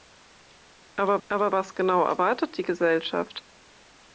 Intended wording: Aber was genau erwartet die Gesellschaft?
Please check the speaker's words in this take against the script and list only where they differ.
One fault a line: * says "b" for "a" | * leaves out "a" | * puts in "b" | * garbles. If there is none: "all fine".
* puts in "aber"